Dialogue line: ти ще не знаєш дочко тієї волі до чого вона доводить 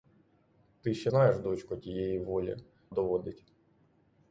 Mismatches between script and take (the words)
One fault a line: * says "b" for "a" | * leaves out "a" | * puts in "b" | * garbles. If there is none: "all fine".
* leaves out "не"
* leaves out "до чого вона"